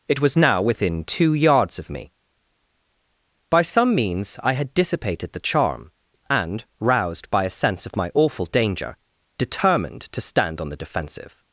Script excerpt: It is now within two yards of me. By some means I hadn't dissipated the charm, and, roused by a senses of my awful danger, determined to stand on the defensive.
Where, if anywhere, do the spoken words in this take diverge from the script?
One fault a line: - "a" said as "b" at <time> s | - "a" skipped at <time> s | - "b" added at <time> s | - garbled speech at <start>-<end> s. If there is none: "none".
- "is" said as "was" at 0.2 s
- "hadn't" said as "had" at 4.5 s
- "senses" said as "sense" at 7.5 s